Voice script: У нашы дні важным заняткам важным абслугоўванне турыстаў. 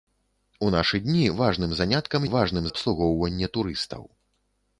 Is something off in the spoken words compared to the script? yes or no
no